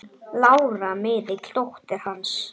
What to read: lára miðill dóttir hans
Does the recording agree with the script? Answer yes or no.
yes